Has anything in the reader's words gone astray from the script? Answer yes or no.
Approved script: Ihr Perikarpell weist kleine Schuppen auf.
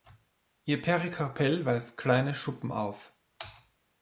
no